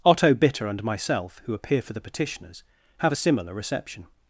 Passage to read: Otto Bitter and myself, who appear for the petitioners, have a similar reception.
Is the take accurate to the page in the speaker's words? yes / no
yes